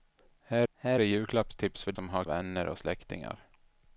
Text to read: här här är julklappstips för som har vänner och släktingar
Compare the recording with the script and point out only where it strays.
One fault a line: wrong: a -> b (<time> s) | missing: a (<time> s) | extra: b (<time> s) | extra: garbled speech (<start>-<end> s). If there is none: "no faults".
no faults